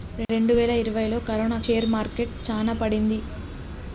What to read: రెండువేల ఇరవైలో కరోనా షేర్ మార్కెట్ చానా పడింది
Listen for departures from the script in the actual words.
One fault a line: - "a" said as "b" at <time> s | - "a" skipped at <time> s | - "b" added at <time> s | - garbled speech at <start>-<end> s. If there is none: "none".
none